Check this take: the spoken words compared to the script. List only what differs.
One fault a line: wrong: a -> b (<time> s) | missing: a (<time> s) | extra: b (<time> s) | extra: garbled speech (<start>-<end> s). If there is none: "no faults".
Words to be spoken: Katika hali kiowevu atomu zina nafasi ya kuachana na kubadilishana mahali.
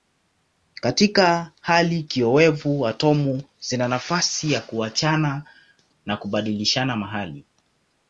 no faults